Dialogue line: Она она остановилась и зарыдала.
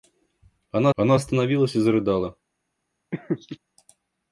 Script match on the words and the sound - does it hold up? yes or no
no